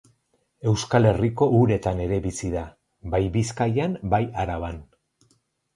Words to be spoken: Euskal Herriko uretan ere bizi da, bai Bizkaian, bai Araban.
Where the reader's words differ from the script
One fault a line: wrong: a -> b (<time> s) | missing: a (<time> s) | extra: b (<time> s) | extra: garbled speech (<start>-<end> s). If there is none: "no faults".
no faults